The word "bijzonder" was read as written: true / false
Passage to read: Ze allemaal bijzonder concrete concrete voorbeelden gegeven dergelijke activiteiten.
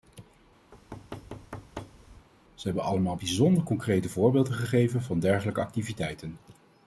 true